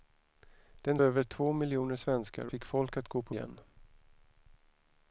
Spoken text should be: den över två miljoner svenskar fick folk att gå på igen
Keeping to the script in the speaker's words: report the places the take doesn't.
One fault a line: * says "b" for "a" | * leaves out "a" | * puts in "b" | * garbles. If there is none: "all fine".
all fine